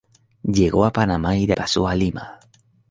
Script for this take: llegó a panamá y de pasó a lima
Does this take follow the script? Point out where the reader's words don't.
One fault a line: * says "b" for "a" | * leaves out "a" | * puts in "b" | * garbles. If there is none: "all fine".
all fine